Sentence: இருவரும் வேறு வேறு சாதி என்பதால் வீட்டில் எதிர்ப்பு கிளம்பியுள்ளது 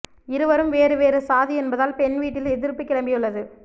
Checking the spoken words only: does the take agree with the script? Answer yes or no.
no